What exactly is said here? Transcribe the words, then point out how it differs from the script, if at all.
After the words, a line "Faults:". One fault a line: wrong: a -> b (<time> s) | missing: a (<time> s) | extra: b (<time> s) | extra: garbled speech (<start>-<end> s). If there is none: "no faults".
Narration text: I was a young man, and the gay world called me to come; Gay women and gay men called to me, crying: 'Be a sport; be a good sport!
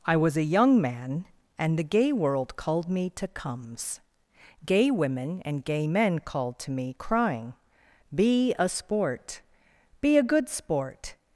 I was a young man, and the gay world called me to comes; Gay women and gay men called to me, crying: 'Be a sport; be a good sport!
Faults:
wrong: come -> comes (3.3 s)